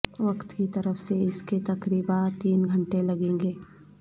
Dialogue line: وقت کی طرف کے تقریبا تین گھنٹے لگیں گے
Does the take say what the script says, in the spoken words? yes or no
no